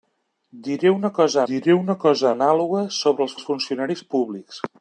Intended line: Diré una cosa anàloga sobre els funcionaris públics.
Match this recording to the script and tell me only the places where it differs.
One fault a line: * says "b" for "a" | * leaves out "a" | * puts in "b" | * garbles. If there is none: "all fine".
* puts in "diré una cosa"
* puts in "els"